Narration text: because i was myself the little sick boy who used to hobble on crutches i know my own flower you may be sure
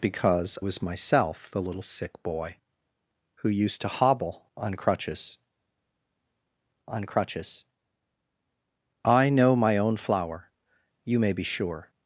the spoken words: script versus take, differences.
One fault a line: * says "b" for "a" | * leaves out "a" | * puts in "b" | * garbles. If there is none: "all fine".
* leaves out "i"
* puts in "on crutches"